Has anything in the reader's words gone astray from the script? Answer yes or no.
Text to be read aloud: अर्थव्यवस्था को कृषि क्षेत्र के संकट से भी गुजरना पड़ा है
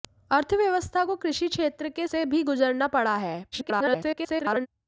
yes